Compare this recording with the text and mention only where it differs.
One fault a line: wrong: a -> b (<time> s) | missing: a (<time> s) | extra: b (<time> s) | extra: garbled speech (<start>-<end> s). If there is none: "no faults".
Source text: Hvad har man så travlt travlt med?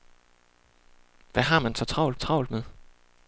no faults